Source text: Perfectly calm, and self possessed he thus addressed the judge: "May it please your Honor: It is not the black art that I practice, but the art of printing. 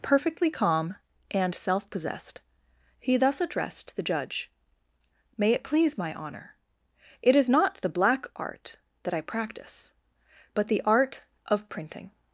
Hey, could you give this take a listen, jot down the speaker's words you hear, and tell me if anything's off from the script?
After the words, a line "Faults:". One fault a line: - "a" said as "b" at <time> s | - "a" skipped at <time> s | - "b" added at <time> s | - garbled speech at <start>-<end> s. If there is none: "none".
Perfectly calm, and self possessed he thus addressed the judge: "May it please my Honor: It is not the black art that I practice, but the art of printing.
Faults:
- "your" said as "my" at 6.0 s